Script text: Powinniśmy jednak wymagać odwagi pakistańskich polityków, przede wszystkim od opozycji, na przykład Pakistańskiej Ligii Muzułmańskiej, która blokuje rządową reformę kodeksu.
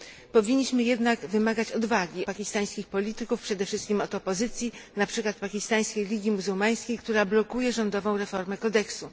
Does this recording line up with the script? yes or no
yes